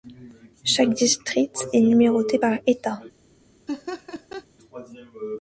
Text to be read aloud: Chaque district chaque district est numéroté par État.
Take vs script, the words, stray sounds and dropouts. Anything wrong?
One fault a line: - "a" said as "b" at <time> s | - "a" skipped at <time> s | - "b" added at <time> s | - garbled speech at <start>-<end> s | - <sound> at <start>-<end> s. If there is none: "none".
- "chaque district" skipped at 1.7 s
- laugh at 3.7-4.5 s